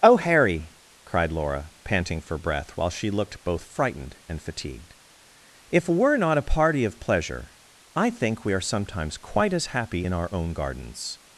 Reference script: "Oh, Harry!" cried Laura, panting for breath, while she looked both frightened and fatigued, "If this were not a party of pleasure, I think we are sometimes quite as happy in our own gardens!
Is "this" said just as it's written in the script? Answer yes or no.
no